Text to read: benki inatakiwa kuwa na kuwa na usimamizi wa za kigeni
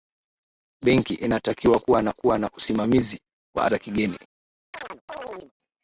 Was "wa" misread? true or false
false